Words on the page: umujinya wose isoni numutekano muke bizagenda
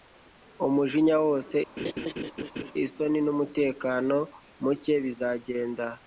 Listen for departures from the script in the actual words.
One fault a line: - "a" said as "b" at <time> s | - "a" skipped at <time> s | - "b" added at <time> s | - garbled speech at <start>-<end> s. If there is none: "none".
none